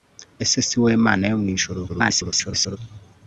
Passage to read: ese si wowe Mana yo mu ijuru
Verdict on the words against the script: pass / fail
fail